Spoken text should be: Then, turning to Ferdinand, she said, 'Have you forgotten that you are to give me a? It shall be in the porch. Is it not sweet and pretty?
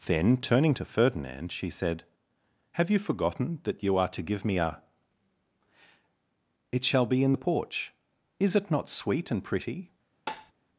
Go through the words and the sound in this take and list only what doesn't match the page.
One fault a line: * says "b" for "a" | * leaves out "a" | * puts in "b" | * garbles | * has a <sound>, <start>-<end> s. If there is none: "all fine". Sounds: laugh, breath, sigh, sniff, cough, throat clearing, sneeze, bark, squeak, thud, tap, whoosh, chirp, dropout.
* has a tap, 10.3-10.5 s